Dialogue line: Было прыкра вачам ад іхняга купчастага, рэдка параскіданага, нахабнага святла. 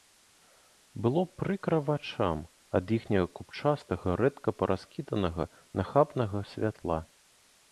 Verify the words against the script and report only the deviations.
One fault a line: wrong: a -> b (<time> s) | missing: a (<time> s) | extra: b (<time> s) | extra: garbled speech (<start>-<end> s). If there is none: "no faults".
no faults